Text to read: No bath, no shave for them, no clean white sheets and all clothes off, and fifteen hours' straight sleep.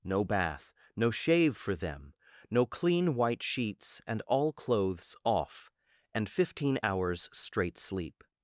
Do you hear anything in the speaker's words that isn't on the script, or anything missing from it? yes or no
no